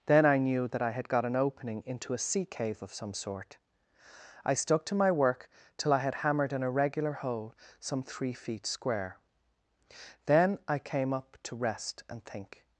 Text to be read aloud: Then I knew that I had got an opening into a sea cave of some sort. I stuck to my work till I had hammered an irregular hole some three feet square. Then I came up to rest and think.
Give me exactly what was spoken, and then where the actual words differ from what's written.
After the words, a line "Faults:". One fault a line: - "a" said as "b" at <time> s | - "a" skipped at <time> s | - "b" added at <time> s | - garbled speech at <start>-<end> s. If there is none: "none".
Then I knew that I had got an opening into a sea cave of some sort. I stuck to my work till I had hammered an irregular hole some three feet square. Then I came up to rest and think.
Faults:
none